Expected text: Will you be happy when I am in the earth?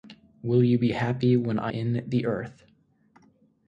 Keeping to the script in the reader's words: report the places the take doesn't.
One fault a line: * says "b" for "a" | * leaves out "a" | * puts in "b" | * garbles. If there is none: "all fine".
* leaves out "am"